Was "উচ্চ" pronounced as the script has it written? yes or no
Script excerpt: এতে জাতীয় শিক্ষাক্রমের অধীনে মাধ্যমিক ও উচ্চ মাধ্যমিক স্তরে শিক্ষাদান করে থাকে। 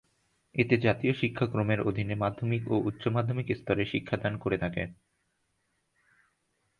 yes